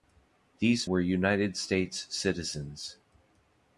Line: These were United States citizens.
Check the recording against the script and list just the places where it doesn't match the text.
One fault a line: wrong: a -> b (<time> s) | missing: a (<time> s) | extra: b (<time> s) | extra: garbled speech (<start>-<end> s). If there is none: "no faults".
no faults